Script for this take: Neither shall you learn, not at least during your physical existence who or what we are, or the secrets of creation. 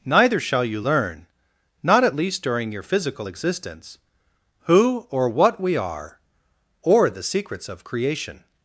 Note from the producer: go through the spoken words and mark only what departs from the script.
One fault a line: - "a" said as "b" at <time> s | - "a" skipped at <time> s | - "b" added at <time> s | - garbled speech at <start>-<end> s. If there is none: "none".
none